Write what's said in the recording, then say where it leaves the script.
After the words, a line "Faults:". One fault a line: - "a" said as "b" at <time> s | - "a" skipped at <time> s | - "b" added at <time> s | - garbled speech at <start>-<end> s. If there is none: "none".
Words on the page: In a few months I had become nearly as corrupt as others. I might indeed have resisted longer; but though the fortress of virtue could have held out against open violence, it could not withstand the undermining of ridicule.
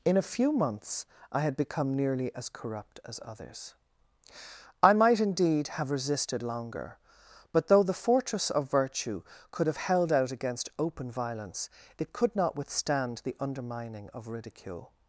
In a few months I had become nearly as corrupt as others. I might indeed have resisted longer; but though the fortress of virtue could have held out against open violence, it could not withstand the undermining of ridicule.
Faults:
none